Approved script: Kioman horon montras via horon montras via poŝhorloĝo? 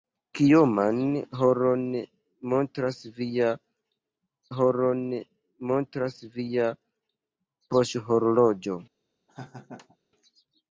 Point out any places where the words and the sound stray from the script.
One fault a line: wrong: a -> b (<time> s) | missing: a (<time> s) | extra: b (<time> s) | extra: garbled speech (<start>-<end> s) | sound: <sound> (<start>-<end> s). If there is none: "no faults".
sound: laugh (9.3-10.0 s)